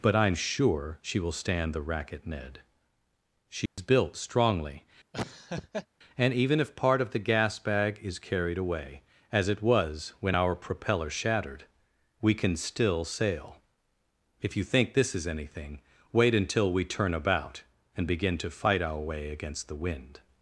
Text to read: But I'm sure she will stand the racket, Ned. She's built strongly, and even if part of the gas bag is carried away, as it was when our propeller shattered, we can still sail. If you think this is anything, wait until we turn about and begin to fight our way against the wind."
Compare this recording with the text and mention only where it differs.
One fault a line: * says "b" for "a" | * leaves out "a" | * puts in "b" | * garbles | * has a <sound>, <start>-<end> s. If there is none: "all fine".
* has a dropout, 3.7-3.8 s
* has a laugh, 5.1-5.9 s